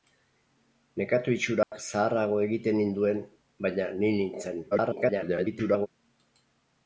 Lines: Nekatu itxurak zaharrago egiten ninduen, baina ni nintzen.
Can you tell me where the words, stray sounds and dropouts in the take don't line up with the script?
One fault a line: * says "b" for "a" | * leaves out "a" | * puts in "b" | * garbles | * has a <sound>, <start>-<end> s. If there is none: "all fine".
* has a dropout, 1.6-1.7 s
* garbles